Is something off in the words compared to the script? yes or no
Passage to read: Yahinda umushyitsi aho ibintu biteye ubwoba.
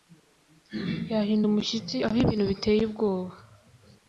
no